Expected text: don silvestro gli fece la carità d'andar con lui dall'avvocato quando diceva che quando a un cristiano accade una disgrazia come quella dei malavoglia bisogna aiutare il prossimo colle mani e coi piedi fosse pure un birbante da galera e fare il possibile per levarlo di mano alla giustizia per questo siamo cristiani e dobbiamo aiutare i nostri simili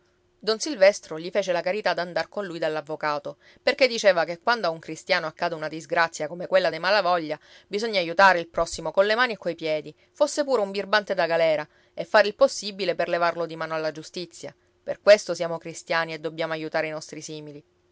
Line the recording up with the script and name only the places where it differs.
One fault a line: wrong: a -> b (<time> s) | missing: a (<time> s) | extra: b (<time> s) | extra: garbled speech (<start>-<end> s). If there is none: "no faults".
wrong: quando -> perché (3.6 s)